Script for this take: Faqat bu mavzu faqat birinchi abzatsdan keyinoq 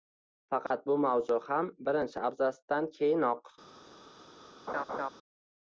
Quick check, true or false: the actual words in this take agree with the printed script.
false